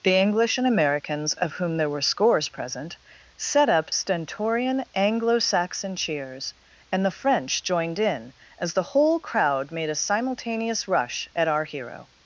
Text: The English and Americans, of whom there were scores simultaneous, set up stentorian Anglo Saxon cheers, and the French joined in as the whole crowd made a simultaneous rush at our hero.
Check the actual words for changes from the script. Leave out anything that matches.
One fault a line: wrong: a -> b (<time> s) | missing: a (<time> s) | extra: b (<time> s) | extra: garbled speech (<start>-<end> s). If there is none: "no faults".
wrong: simultaneous -> present (2.5 s)